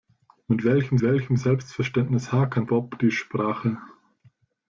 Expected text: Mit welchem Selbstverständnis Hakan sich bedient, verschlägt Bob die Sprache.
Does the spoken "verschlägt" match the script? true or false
false